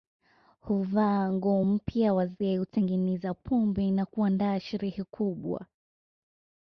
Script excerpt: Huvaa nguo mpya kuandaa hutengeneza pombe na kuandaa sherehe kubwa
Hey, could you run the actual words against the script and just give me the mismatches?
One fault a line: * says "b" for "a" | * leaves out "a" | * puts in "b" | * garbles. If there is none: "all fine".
* says "wazee" for "kuandaa"